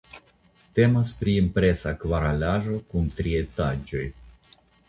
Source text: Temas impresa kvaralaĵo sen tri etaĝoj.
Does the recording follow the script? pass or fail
fail